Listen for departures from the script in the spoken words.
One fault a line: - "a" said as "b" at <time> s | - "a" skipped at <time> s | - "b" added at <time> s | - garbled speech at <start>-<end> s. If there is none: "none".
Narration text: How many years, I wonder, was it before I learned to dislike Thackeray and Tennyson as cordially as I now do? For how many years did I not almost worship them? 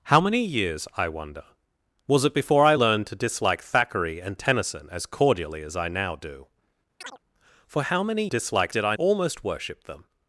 - "years" said as "dislike" at 8.3 s
- "not" skipped at 8.9 s